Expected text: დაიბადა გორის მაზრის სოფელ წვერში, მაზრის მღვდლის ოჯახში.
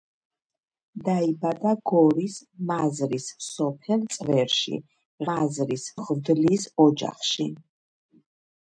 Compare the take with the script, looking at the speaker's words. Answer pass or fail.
pass